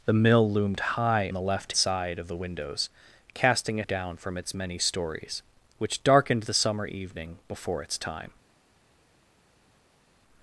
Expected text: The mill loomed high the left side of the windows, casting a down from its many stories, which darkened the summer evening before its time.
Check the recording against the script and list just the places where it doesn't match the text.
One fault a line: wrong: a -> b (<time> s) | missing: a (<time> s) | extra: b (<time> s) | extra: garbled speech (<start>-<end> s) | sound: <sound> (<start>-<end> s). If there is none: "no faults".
no faults